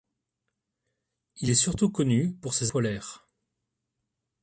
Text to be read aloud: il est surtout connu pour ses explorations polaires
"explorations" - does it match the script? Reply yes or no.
no